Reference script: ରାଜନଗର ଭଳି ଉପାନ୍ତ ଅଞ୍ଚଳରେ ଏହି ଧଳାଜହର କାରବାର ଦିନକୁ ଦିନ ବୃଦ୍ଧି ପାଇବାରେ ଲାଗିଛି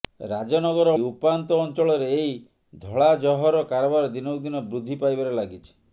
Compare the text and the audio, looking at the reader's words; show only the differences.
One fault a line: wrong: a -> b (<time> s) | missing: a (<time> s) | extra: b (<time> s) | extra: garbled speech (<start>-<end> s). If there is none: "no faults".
missing: ଭଳି (0.9 s)